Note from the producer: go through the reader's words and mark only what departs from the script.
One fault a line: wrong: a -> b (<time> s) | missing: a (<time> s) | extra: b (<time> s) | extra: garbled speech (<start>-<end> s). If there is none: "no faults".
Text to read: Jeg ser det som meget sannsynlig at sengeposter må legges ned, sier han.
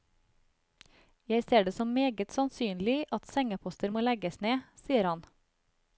no faults